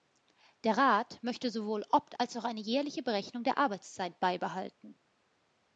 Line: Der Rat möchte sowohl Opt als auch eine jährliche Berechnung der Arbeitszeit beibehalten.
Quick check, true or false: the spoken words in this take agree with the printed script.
true